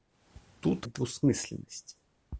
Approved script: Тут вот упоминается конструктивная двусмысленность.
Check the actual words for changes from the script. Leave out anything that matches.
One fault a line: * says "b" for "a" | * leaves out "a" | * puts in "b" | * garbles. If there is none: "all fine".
* leaves out "вот упоминается конструктивная"